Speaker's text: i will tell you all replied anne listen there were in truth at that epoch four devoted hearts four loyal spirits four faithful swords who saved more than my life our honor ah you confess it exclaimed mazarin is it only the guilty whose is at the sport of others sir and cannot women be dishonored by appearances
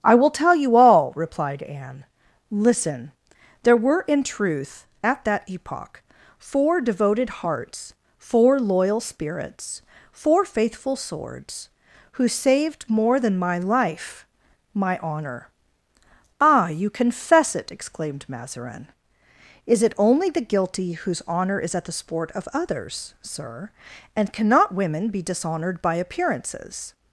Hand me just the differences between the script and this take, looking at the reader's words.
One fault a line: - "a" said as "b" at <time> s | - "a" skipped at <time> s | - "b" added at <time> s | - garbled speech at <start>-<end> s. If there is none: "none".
- "our" said as "my" at 14.7 s
- "honor" added at 21.3 s